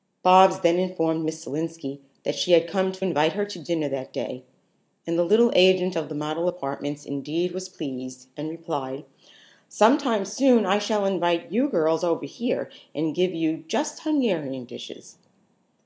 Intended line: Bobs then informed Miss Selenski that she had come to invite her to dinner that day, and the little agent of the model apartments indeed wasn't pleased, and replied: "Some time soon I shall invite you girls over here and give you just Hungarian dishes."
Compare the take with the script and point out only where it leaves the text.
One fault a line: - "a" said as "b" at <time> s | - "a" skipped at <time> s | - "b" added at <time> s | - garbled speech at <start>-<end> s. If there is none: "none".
- "wasn't" said as "was" at 7.5 s